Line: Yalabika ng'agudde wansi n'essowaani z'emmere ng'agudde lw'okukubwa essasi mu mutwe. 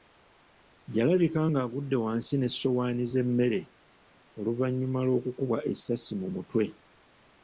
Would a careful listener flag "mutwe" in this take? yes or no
no